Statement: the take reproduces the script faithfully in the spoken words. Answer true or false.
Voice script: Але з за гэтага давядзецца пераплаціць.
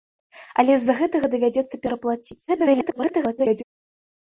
false